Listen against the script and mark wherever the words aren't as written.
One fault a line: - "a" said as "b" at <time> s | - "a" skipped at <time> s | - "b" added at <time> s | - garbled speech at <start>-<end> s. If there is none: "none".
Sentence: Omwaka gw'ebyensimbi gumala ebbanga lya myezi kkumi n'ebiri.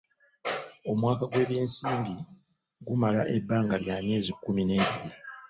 none